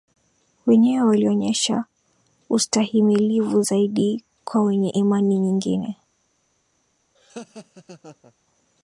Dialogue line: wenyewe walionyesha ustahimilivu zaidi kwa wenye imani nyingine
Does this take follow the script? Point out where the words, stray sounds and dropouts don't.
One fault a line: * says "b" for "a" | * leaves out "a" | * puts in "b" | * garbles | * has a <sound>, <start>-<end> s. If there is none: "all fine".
* has a laugh, 7.1-8.3 s